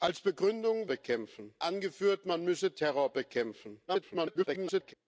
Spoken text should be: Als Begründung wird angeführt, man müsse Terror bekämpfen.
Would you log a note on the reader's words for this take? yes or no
yes